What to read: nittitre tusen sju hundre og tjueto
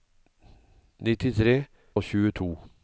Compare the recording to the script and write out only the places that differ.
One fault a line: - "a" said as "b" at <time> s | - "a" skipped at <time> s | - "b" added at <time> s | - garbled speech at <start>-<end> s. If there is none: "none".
- "tusen sju hundre" skipped at 1.6 s